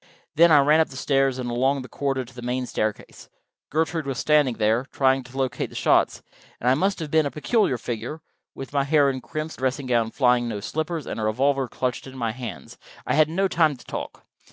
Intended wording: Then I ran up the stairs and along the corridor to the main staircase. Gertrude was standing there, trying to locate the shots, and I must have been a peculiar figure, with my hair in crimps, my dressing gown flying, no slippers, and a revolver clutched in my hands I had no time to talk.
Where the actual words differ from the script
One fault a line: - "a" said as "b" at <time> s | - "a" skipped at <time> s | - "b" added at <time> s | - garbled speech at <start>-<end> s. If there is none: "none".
- "my" skipped at 9.6 s